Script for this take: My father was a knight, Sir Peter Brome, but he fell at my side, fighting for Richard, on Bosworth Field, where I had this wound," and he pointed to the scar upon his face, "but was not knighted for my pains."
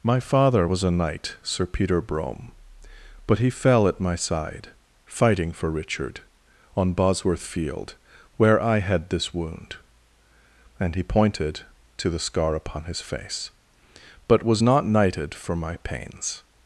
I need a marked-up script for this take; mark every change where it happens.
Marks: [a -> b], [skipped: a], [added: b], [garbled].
My father was a knight, Sir Peter Brome, but he fell at my side, fighting for Richard, on Bosworth Field, where I had this wound," and he pointed to the scar upon his face, "but was not knighted for my pains."